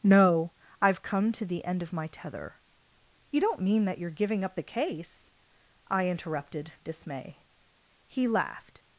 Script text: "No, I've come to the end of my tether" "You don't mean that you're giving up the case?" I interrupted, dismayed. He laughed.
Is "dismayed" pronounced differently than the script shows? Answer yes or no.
yes